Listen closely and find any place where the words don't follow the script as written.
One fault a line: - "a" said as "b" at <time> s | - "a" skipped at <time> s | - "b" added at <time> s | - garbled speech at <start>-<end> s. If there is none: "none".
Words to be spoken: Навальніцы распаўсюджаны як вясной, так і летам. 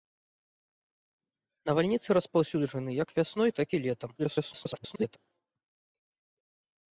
- garbled speech at 4.2-5.2 s